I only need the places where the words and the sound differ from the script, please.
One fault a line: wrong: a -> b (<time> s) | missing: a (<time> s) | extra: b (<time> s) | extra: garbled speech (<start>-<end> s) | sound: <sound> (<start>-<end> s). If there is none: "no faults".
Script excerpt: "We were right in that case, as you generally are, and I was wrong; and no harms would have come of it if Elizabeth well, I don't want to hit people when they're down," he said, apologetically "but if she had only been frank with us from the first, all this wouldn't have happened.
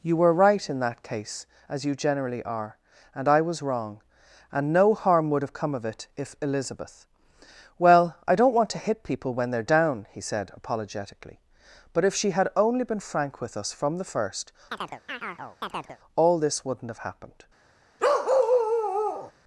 wrong: We -> You (0.0 s)
wrong: harms -> harm (4.9 s)
sound: chirp (14.7-16.0 s)
sound: bark (18.0-19.3 s)